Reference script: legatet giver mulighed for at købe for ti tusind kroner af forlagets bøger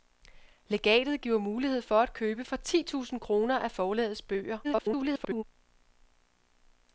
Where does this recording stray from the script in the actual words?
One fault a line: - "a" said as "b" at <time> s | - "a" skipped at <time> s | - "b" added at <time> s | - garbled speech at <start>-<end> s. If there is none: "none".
- garbled speech at 4.6-5.4 s